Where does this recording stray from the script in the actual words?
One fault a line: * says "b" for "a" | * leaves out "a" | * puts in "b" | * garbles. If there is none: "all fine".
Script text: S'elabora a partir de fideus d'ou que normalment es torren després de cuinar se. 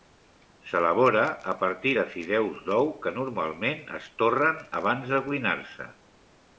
* says "abans" for "després"